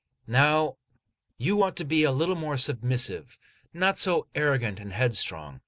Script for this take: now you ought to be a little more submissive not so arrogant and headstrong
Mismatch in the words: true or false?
false